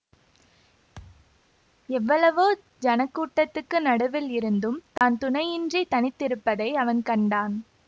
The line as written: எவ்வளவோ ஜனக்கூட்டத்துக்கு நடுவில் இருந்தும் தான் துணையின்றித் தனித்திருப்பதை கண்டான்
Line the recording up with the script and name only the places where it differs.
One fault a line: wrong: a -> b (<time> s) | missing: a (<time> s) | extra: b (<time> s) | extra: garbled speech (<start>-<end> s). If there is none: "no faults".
extra: அவன் (6.8 s)